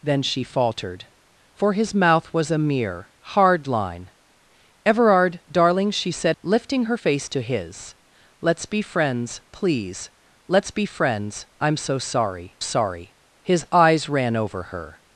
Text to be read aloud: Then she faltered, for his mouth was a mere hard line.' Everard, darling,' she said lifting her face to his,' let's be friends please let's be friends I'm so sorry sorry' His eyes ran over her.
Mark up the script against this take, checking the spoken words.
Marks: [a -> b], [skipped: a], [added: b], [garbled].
Then she faltered, for his mouth was a mere hard line.' Everard, darling,' she said lifting her face to his,' let's be friends please let's be friends I'm so sorry sorry' His eyes ran over her.